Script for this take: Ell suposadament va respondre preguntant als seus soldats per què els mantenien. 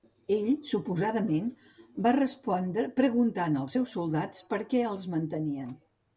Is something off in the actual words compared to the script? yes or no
no